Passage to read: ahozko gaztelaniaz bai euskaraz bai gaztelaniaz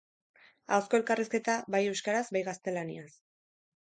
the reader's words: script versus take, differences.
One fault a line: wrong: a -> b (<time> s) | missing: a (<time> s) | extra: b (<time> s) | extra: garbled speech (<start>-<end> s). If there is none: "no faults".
wrong: gaztelaniaz -> elkarrizketa (1.0 s)